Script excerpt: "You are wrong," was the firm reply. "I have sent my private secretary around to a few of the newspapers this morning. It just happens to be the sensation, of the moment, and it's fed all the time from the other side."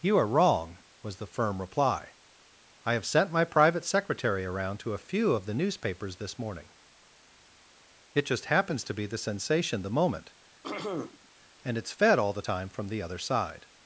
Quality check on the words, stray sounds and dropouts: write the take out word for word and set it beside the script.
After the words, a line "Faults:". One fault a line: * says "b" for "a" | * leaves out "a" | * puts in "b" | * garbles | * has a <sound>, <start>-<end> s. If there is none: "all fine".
"You are wrong," was the firm reply. "I have sent my private secretary around to a few of the newspapers this morning. It just happens to be the sensation, the moment, and it's fed all the time from the other side."
Faults:
* leaves out "of"
* has a throat clearing, 10.6-11.3 s